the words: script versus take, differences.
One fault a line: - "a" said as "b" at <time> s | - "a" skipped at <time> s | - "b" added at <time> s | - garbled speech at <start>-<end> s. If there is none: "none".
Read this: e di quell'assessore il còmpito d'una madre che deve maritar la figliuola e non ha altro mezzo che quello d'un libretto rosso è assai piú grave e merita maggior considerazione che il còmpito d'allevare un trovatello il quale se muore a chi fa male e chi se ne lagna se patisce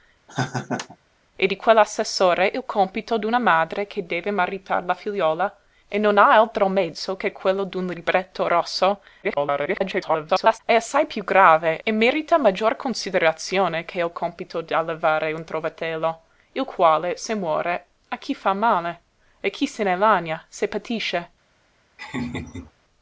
- garbled speech at 9.2-10.6 s